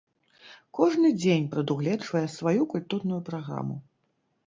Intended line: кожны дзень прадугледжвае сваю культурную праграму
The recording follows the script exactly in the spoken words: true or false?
true